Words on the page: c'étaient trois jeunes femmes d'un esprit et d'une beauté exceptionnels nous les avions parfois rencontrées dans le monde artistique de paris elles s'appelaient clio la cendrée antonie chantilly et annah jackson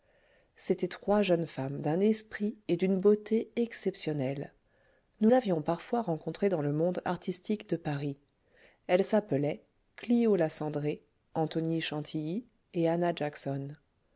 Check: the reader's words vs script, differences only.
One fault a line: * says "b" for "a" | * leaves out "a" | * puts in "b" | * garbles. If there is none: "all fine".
* leaves out "les"